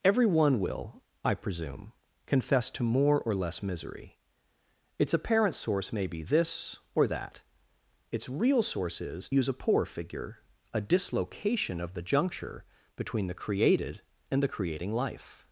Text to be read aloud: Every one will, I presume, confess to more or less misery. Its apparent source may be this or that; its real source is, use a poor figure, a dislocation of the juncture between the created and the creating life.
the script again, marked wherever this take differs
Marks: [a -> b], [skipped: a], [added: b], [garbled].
Every one will, I presume, confess to more or less misery. Its apparent source may be this or that; its real source is, use a poor figure, a dislocation of the juncture between the created and the creating life.